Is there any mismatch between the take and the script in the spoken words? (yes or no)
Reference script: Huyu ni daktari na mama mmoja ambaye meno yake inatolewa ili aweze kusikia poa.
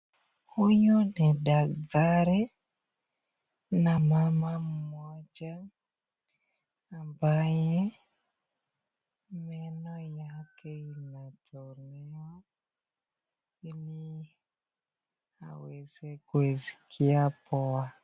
no